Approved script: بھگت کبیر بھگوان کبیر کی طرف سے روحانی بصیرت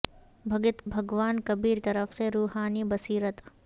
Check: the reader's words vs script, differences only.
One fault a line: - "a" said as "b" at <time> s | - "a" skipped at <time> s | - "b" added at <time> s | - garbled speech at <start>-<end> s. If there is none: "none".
- "کبیر" skipped at 0.8 s
- "کی" skipped at 1.8 s